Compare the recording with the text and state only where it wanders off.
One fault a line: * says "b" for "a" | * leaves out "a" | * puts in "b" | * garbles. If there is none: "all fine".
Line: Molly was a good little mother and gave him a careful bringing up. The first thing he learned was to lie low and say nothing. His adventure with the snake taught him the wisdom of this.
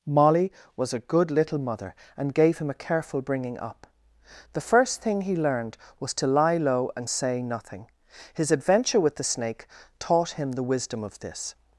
all fine